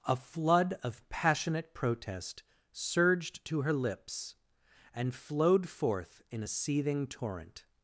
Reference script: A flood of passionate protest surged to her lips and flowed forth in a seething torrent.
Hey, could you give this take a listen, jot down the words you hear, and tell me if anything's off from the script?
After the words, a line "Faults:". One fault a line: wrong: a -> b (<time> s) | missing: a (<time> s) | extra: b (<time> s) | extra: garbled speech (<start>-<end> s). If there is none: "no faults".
A flood of passionate protest surged to her lips and flowed forth in a seething torrent.
Faults:
no faults